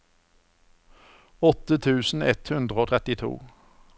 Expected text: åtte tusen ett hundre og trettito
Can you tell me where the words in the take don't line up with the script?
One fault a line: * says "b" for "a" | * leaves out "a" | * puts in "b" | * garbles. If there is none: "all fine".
all fine